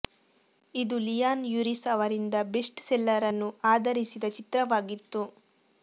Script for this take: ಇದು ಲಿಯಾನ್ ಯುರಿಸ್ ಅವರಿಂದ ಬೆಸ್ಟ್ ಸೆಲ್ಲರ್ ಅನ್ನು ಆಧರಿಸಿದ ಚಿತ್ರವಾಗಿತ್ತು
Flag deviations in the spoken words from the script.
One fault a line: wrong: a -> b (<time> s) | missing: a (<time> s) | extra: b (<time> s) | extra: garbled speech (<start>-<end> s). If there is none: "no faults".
no faults